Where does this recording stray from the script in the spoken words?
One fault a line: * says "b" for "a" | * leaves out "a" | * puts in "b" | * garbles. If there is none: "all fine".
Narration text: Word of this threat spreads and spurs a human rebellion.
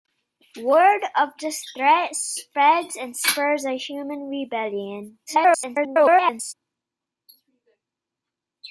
* garbles